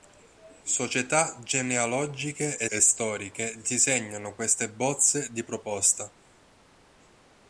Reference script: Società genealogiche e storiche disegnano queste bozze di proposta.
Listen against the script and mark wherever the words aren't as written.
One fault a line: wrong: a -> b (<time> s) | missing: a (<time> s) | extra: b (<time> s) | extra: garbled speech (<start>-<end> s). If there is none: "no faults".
extra: e (2.7 s)